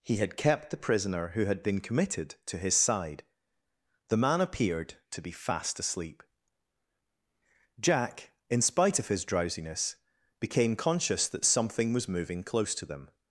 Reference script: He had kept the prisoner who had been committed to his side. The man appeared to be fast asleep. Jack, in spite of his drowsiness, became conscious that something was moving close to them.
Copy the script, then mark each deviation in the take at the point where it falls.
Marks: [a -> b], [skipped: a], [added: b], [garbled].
He had kept the prisoner who had been committed to his side. The man appeared to be fast asleep. Jack, in spite of his drowsiness, became conscious that something was moving close to them.